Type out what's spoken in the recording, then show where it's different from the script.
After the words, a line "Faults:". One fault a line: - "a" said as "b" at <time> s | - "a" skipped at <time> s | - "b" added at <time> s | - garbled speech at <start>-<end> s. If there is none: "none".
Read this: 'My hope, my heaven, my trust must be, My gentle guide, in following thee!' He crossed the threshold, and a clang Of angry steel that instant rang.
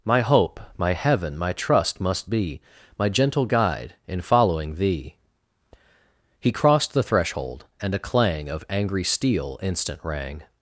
'My hope, my heaven, my trust must be, My gentle guide, in following thee!' He crossed the threshold, and a clang Of angry steel instant rang.
Faults:
- "that" skipped at 9.6 s